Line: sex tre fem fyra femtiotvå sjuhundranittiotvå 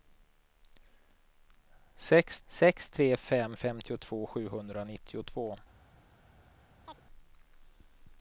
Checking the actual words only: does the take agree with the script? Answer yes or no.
no